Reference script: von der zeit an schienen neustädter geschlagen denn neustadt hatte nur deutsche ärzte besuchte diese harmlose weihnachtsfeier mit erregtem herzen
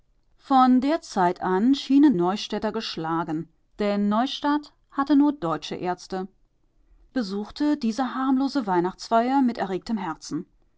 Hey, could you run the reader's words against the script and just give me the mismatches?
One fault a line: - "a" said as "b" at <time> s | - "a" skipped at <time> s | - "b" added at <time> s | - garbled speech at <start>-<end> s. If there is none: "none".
none